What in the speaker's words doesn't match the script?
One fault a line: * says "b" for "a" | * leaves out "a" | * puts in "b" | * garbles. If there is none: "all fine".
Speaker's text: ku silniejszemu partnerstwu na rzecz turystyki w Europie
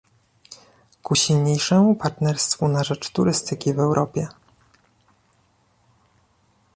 all fine